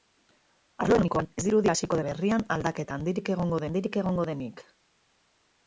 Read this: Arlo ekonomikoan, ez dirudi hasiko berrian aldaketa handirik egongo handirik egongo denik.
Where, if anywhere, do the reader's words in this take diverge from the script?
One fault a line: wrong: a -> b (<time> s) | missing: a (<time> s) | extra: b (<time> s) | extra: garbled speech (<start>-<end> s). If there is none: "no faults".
no faults